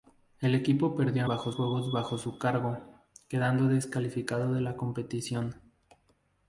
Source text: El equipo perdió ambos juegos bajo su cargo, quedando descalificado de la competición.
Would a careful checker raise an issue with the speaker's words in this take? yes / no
yes